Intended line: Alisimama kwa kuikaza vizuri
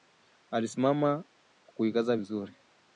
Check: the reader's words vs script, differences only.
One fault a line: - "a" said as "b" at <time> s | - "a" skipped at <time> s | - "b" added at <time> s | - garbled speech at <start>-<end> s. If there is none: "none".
none